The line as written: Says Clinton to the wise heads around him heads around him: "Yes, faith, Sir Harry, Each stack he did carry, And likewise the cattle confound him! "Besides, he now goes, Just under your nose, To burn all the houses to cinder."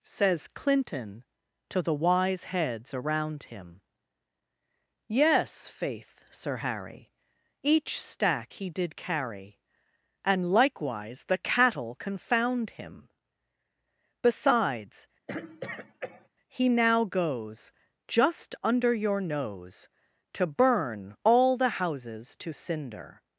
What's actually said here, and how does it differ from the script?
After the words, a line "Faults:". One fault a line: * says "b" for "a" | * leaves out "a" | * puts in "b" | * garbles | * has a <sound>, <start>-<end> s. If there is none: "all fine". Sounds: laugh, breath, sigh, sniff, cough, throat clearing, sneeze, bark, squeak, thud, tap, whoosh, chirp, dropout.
Says Clinton to the wise heads around him: "Yes, faith, Sir Harry, Each stack he did carry, And likewise the cattle confound him! "Besides, he now goes, Just under your nose, To burn all the houses to cinder."
Faults:
* leaves out "heads around him"
* has a throat clearing, 15.3-16.3 s